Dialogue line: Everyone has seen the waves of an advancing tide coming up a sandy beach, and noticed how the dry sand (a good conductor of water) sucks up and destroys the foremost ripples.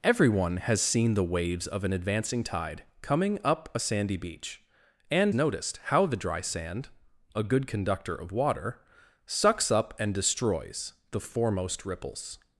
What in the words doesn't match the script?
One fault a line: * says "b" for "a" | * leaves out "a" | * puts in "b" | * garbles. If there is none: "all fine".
all fine